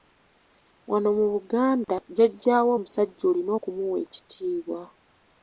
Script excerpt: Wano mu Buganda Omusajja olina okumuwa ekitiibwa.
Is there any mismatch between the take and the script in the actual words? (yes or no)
yes